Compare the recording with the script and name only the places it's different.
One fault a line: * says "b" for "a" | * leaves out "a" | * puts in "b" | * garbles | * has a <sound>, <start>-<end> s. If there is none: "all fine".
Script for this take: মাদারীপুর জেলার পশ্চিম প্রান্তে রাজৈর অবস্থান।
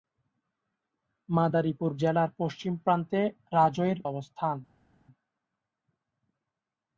all fine